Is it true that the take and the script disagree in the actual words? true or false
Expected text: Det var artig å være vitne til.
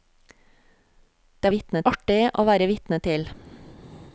true